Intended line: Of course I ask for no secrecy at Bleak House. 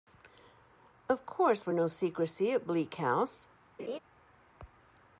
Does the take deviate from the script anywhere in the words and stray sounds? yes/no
yes